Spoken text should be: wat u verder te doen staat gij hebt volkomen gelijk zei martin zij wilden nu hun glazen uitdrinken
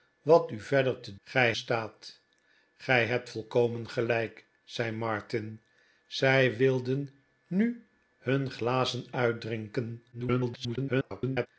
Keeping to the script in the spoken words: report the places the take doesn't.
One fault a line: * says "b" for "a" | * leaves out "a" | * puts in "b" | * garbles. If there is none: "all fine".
* says "gij" for "doen"
* garbles